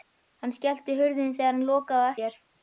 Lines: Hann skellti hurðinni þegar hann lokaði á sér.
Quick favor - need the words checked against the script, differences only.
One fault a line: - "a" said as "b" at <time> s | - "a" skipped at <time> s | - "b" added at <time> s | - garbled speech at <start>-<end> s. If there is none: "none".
none